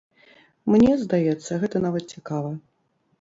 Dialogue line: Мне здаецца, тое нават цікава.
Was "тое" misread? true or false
true